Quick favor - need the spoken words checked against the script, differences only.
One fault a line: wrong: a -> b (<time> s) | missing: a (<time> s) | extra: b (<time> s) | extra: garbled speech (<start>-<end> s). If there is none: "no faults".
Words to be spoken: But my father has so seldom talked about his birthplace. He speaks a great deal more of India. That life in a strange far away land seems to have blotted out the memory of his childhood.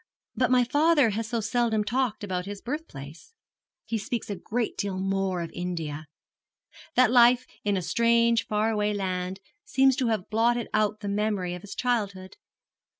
no faults